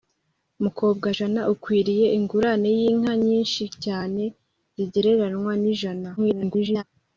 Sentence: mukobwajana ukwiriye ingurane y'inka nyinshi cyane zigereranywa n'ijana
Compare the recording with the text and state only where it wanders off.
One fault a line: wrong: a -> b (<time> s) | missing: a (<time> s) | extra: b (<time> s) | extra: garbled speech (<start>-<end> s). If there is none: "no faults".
extra: garbled speech (6.2-6.8 s)